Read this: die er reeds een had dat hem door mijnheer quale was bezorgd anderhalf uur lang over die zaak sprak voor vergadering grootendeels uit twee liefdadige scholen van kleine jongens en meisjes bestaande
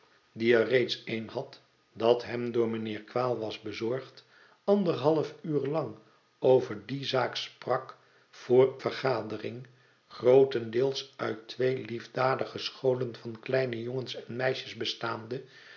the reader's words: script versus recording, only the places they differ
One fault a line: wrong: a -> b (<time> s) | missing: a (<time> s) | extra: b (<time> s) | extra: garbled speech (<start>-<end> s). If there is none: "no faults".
no faults